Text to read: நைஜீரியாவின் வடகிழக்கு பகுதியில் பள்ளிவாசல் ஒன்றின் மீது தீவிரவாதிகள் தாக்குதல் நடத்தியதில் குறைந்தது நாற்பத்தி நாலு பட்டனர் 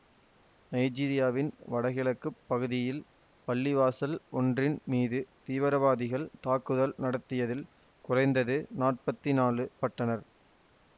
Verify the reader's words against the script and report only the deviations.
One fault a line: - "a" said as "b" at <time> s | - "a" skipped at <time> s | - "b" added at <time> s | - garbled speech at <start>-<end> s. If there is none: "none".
none